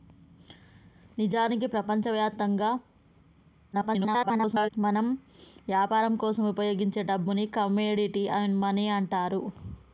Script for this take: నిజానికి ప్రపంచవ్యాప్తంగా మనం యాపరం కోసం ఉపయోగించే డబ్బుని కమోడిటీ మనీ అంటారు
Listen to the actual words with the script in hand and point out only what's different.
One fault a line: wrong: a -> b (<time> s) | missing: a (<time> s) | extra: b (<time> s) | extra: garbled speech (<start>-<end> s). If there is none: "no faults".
extra: garbled speech (3.7-4.7 s)